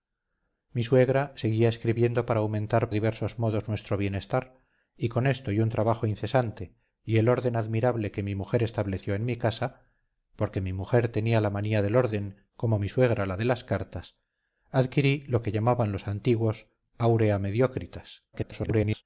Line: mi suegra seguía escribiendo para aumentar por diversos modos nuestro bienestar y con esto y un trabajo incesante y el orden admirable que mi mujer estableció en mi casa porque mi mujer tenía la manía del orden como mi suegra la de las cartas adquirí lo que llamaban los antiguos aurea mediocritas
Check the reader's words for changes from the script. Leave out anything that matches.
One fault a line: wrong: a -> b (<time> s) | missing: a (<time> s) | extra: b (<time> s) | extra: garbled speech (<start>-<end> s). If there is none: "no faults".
missing: por (2.9 s)
extra: garbled speech (18.3-19.0 s)